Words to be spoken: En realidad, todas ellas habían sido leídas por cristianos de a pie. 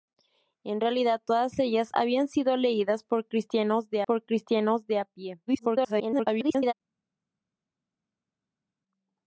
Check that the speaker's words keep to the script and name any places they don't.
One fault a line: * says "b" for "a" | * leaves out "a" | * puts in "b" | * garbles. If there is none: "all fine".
* puts in "por cristianos de"
* garbles